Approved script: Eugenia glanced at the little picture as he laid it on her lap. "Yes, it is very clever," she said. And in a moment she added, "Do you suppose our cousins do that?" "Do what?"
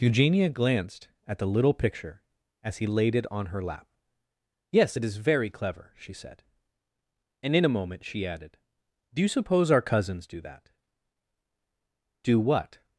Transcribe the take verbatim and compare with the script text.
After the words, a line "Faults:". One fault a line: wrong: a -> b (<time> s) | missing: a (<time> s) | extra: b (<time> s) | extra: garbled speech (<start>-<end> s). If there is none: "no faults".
Eugenia glanced at the little picture as he laid it on her lap. "Yes, it is very clever," she said. And in a moment she added, "Do you suppose our cousins do that?" "Do what?"
Faults:
no faults